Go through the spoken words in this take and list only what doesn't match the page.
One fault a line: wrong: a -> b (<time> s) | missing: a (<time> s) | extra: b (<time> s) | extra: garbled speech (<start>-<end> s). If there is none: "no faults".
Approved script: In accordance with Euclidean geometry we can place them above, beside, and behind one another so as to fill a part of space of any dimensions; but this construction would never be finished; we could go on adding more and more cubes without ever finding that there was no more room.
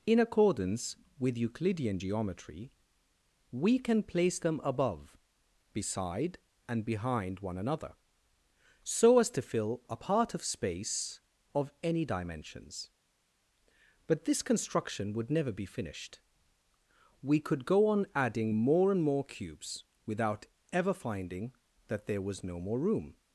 no faults